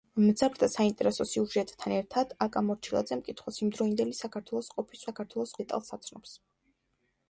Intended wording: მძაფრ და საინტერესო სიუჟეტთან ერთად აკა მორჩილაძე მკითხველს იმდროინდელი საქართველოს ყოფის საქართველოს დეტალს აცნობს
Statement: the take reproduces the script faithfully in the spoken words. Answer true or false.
true